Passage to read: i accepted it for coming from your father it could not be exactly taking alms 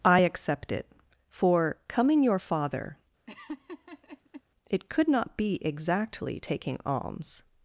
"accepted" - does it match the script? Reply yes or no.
no